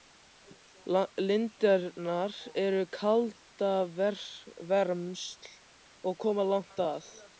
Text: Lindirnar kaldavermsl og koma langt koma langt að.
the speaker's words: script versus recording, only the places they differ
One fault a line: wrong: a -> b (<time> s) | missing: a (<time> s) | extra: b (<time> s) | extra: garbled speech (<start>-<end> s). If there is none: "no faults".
extra: eru (2.6 s)
missing: koma langt (6.8 s)